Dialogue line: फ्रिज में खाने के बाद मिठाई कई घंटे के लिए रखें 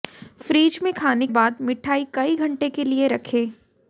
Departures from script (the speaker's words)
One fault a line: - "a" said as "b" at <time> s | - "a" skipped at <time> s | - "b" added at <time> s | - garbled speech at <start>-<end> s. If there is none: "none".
- "के" skipped at 1.3 s